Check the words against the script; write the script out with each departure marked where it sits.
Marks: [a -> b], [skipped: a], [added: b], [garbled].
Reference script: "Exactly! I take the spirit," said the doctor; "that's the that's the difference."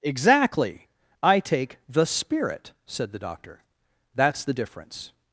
"Exactly! I take the spirit," said the doctor; "that's the [skipped: that's the] difference."